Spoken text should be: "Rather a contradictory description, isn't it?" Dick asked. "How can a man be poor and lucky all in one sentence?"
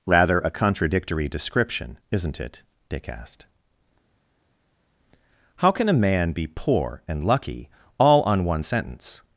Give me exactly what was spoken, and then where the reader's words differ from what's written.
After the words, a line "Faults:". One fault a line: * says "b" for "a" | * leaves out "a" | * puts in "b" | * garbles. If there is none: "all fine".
"Rather a contradictory description, isn't it?" Dick asked. "How can a man be poor and lucky all on one sentence?"
Faults:
* says "on" for "in"